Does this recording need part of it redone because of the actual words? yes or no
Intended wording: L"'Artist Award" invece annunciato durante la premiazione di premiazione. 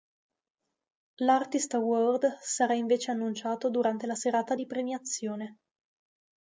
yes